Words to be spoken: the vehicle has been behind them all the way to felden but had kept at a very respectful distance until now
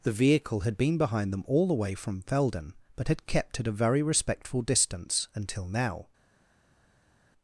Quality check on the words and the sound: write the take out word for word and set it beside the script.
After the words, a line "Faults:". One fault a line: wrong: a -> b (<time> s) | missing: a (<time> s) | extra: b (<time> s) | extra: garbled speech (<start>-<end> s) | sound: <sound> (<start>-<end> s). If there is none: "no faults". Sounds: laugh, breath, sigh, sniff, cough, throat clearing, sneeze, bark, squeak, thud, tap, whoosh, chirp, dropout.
the vehicle had been behind them all the way from felden but had kept at a very respectful distance until now
Faults:
wrong: has -> had (0.6 s)
wrong: to -> from (1.9 s)